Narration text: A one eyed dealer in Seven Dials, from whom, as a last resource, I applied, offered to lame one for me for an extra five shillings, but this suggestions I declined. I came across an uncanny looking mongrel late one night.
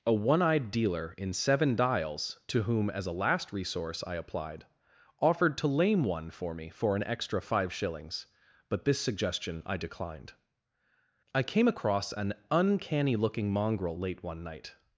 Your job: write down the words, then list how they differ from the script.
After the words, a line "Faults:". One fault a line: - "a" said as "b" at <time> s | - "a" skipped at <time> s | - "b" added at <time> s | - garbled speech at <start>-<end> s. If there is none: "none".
A one eyed dealer in Seven Dials, to whom, as a last resource, I applied, offered to lame one for me for an extra five shillings, but this suggestion I declined. I came across an uncanny looking mongrel late one night.
Faults:
- "from" said as "to" at 2.5 s
- "suggestions" said as "suggestion" at 9.0 s